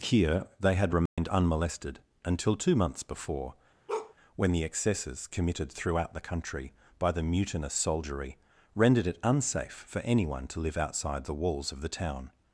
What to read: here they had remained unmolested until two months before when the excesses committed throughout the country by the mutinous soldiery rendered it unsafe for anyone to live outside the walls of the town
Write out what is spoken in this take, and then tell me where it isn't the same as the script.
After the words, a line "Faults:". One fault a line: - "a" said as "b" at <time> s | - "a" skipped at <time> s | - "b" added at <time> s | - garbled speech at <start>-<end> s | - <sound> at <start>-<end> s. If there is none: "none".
here they had remained unmolested until two months before when the excesses committed throughout the country by the mutinous soldiery rendered it unsafe for anyone to live outside the walls of the town
Faults:
- dropout at 1.1-1.2 s
- bark at 3.9-4.1 s